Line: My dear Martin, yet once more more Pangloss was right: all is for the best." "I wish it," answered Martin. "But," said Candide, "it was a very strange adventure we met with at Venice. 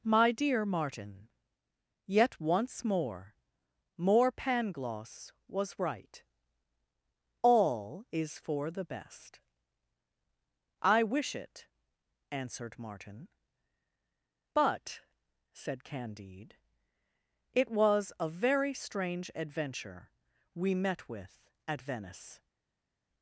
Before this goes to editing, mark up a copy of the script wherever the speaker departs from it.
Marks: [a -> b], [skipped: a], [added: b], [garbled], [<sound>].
My dear Martin, yet once more more Pangloss was right: all is for the best." "I wish it," answered Martin. "But," said Candide, "it was a very strange adventure we met with at Venice.